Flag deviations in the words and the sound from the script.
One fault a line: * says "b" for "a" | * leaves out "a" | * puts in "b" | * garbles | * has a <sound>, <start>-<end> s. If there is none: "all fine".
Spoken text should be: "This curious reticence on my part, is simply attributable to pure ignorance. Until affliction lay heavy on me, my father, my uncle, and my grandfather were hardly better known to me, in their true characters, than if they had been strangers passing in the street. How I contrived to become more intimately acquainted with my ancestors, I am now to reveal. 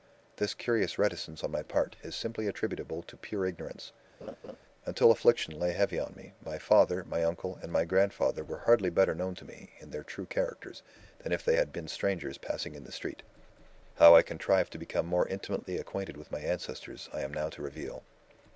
* has a laugh, 4.2-4.6 s